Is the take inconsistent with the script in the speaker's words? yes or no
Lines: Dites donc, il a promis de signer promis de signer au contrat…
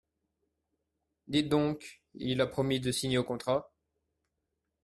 yes